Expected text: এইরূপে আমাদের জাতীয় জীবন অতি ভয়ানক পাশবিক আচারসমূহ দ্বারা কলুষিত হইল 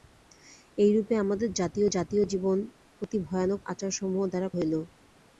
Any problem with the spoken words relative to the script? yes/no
yes